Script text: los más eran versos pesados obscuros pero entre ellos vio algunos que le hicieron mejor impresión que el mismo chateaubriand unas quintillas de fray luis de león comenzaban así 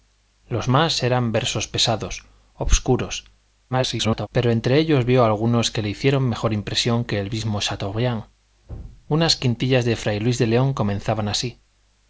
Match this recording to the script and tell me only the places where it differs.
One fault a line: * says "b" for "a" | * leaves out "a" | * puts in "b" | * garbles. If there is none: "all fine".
* garbles